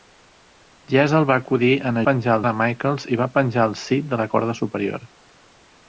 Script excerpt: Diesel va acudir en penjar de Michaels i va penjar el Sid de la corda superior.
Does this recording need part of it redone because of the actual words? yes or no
no